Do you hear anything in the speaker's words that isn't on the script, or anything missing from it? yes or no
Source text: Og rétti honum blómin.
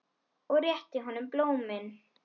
no